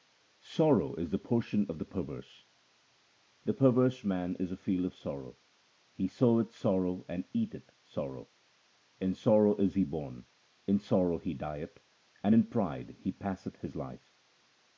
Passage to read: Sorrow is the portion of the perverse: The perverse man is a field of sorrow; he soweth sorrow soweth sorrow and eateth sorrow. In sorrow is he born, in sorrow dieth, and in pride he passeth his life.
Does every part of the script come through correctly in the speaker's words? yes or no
no